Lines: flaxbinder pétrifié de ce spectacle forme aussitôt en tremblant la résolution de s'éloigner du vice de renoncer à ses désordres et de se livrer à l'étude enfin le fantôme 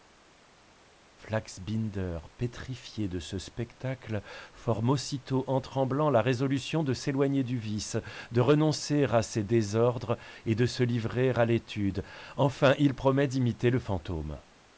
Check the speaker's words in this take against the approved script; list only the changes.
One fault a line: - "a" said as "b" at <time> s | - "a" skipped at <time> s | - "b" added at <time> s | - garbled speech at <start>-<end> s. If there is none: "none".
- "il promet d'imiter" added at 12.8 s